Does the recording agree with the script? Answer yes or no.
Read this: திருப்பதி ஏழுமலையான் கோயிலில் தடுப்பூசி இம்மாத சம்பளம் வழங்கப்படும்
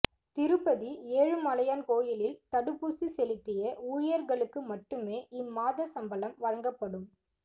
no